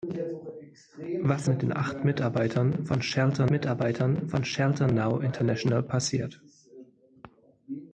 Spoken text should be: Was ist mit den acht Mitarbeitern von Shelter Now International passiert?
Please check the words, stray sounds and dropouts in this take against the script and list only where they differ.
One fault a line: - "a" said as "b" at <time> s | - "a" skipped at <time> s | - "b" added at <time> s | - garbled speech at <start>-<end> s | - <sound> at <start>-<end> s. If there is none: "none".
- "ist" skipped at 1.5 s
- "Mitarbeitern von Shelter" added at 3.5 s